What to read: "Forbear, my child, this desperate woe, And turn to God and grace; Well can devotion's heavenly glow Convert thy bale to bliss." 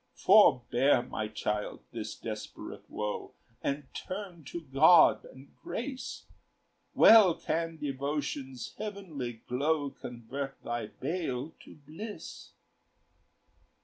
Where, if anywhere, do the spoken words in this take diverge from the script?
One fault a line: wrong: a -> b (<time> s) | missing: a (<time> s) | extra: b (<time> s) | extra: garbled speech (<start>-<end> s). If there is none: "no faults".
no faults